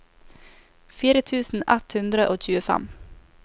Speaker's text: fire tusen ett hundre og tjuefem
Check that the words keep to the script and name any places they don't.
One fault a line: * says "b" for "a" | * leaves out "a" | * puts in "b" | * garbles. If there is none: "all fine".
all fine